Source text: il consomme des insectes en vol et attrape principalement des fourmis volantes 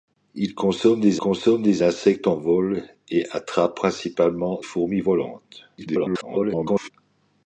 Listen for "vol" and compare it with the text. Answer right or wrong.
right